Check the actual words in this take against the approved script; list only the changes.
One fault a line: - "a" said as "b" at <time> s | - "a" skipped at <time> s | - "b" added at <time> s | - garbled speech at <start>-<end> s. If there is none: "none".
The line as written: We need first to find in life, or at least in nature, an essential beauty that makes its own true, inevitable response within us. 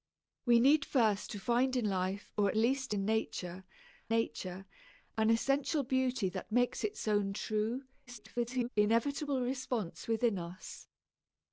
- "nature" added at 4.1 s
- garbled speech at 8.1-8.7 s